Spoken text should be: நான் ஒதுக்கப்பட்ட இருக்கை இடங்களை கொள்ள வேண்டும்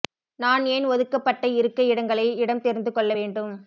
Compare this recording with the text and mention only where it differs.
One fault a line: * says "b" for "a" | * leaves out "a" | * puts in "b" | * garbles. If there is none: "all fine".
* puts in "ஏன்"
* puts in "இடம் தெரிந்து"